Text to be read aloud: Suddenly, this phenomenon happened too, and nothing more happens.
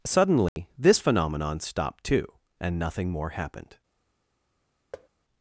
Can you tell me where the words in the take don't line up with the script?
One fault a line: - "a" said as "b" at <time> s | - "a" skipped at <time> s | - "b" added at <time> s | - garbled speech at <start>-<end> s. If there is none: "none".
- "happened" said as "stopped" at 1.6 s
- "happens" said as "happened" at 3.3 s